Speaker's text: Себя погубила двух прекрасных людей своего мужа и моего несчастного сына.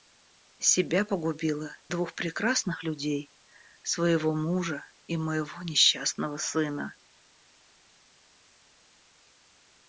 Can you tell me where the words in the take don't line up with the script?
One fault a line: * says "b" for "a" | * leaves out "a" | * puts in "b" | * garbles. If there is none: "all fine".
all fine